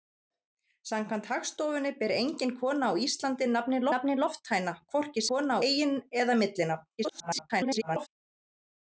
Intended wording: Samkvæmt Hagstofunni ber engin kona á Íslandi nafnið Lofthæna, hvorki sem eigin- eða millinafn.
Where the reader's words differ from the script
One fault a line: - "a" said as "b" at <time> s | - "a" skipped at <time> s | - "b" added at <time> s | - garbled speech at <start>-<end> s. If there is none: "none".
- "nafnið" added at 3.9 s
- "sem" said as "kona" at 5.3 s
- garbled speech at 7.0-8.1 s